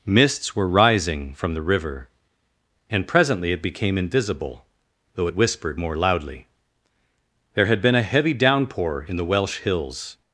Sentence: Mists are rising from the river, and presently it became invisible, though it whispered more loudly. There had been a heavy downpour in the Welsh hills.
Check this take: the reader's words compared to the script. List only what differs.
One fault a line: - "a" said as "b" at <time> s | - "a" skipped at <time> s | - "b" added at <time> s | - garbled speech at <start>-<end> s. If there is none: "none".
- "are" said as "were" at 0.6 s